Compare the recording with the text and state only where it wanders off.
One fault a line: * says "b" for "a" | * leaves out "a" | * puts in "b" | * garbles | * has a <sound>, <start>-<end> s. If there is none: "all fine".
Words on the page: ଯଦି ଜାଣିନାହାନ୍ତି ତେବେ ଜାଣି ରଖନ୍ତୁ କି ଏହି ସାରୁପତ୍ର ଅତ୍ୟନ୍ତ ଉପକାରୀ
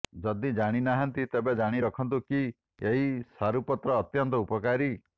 all fine